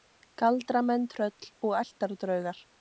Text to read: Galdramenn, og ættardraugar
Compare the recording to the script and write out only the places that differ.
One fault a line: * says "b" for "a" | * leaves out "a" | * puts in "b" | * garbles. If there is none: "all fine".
* puts in "tröll"